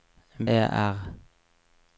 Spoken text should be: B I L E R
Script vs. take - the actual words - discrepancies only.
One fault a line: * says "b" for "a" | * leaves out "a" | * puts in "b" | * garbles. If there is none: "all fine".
* leaves out "I L"